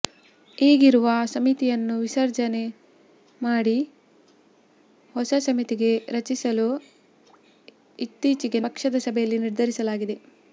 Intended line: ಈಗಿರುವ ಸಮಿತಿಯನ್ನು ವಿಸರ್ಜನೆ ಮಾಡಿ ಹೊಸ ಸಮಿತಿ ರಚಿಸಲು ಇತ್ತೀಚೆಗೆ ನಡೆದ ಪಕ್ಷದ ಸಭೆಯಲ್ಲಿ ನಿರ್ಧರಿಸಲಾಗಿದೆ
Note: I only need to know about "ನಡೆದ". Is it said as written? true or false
false